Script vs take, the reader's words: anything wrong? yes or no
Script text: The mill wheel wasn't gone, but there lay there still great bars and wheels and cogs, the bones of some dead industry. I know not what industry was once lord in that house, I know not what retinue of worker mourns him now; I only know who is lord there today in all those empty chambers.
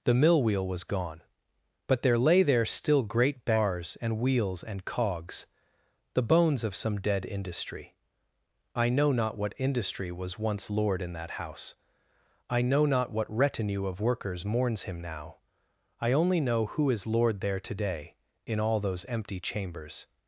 yes